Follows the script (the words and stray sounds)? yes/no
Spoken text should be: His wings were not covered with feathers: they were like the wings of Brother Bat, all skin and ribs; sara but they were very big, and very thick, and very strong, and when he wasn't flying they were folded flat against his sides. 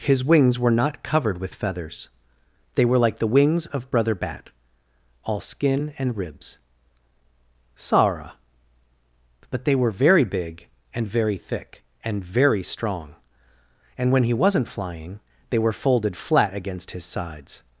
yes